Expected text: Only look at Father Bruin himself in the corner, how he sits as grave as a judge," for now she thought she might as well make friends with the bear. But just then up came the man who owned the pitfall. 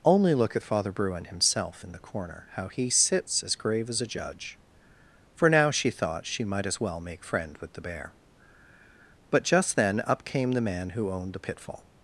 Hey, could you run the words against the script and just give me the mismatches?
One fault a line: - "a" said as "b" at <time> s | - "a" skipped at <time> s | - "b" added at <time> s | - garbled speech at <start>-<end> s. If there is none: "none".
- "friends" said as "friend" at 7.2 s